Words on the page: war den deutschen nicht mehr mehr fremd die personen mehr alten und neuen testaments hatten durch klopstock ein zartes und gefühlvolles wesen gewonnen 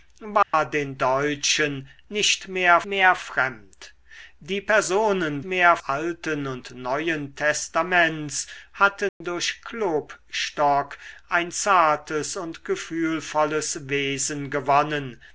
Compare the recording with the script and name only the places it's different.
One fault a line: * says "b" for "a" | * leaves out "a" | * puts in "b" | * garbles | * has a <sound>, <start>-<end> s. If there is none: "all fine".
* has a dropout, 0.4-0.5 s
* has a dropout, 9.1-9.2 s